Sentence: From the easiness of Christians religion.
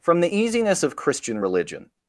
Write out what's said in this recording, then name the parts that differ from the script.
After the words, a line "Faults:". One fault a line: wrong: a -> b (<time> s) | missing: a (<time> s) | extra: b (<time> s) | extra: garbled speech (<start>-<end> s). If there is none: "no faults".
From the easiness of Christian religion.
Faults:
wrong: Christians -> Christian (1.0 s)